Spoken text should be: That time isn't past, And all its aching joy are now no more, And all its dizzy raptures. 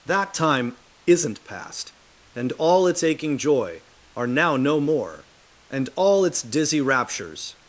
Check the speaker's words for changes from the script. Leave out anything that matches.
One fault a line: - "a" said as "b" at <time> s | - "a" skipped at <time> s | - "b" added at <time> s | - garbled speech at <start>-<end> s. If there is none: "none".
none